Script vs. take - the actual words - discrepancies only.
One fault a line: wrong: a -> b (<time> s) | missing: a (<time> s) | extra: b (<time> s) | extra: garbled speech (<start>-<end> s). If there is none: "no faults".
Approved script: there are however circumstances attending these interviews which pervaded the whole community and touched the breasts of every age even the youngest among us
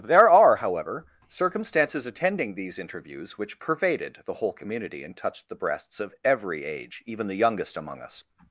no faults